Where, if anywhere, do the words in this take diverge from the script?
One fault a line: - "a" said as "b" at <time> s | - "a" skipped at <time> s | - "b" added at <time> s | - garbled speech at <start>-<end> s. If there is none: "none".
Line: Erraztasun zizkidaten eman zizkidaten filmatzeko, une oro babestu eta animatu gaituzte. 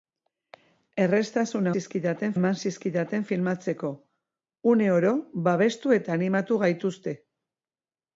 none